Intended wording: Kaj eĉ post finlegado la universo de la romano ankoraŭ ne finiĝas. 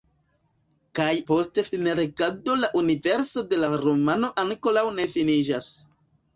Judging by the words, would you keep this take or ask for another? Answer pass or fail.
fail